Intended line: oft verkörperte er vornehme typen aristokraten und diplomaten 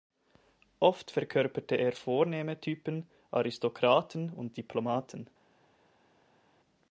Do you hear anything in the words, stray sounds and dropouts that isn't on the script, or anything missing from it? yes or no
no